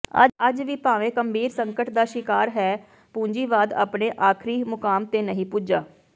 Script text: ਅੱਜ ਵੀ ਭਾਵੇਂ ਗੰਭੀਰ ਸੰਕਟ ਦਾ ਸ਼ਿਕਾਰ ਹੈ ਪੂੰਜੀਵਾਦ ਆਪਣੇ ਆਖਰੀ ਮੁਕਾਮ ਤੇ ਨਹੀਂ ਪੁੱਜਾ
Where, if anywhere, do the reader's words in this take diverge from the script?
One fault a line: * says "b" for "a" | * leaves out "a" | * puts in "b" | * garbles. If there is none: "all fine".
all fine